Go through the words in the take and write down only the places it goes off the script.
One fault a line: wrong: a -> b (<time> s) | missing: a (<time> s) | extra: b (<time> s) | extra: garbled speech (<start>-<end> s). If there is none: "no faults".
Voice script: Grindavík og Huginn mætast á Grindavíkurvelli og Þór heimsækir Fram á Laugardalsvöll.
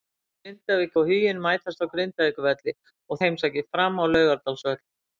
missing: Þór (3.2 s)